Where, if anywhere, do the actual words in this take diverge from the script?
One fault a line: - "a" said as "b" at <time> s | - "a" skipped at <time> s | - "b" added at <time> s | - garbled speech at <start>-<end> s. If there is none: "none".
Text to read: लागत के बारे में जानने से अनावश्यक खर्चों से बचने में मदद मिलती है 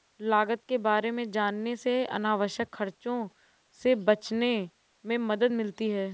none